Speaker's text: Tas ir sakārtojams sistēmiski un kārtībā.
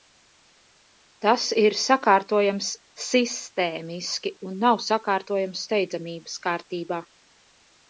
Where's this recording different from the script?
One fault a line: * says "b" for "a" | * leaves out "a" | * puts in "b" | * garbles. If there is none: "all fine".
* puts in "nav sakārtojams steidzamības"